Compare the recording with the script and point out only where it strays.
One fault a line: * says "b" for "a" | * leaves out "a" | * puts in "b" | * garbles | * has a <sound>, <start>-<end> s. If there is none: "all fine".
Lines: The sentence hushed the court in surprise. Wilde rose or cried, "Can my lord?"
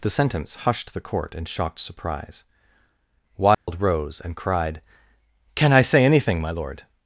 * puts in "shocked"
* has a dropout, 3.5-3.7 s
* says "and" for "or"
* puts in "I say anything"